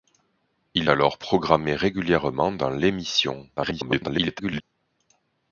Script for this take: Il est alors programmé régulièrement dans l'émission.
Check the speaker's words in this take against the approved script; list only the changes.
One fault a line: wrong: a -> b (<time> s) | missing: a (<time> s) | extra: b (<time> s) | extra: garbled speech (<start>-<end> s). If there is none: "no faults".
missing: est (0.9 s)
extra: garbled speech (3.6-4.6 s)